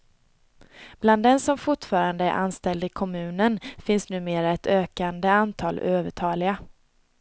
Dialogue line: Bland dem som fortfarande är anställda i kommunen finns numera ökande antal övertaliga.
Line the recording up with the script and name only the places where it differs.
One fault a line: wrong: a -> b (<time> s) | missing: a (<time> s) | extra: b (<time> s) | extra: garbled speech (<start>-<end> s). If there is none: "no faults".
extra: ett (4.5 s)